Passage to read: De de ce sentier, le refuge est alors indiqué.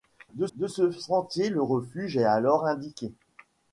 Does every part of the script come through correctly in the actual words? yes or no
yes